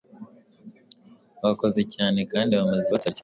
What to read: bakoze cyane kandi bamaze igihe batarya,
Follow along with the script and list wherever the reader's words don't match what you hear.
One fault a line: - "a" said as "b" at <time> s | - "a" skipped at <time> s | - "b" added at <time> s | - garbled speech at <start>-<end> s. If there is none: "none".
- "igihe" skipped at 2.9 s